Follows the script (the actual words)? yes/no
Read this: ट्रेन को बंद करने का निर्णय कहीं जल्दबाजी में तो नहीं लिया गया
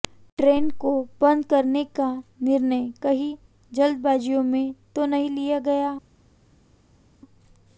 yes